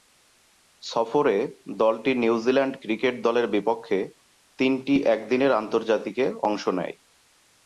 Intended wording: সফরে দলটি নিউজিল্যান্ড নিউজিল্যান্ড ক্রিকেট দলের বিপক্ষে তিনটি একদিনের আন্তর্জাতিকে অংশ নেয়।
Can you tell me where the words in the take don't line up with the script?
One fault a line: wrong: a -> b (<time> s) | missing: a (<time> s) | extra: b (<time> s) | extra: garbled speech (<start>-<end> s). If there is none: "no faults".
missing: নিউজিল্যান্ড (2.7 s)